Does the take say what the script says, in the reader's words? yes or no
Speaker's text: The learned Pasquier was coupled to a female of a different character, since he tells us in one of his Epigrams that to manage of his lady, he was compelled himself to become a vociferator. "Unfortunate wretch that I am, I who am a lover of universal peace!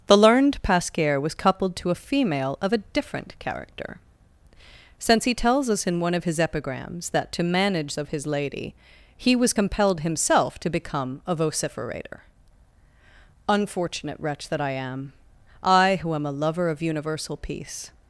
yes